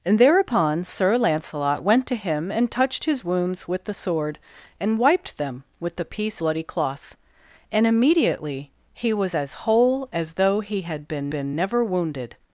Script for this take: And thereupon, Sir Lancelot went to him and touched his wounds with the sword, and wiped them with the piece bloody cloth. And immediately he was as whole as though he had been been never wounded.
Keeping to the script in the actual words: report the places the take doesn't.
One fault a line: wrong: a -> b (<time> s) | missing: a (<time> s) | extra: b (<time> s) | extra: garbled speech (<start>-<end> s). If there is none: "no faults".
no faults